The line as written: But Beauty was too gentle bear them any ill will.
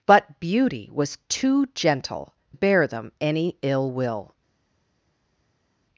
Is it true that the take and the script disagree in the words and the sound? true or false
false